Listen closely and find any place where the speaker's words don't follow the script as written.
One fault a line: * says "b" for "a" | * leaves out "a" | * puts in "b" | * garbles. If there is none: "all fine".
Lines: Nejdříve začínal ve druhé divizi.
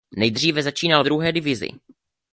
* leaves out "ve"